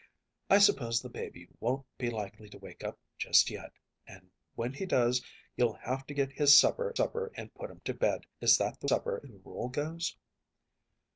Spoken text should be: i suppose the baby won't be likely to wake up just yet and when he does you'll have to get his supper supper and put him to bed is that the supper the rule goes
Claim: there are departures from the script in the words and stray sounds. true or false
false